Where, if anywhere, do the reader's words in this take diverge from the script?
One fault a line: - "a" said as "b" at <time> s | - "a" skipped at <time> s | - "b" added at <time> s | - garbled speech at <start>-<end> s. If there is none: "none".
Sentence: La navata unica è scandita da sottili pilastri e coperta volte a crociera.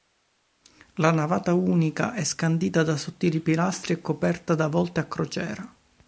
- "da" added at 4.5 s